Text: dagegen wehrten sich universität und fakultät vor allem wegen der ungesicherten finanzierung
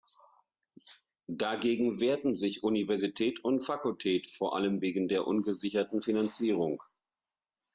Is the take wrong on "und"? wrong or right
right